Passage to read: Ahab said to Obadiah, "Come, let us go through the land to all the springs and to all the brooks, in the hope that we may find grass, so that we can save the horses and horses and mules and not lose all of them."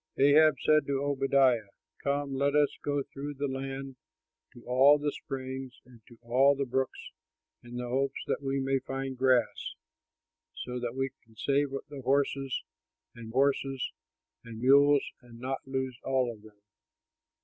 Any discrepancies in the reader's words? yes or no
no